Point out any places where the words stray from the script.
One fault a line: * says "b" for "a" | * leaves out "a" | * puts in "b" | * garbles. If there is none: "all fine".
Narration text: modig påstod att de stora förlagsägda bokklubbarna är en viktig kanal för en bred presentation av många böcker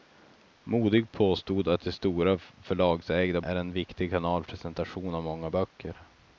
* leaves out "bokklubbarna"
* leaves out "för en bred"